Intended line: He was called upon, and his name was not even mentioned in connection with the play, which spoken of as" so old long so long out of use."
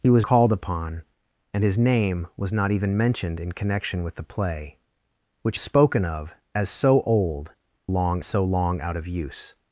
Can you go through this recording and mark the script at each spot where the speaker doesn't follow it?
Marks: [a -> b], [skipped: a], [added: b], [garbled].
He was called upon, and his name was not even mentioned in connection with the play, which spoken of as" so old long so long out of use."